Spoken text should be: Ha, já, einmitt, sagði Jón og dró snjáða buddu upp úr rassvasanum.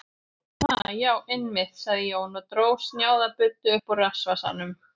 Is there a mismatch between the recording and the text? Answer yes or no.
no